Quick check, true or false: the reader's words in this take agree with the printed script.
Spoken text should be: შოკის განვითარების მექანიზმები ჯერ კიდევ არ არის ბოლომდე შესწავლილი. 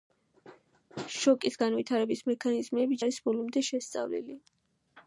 false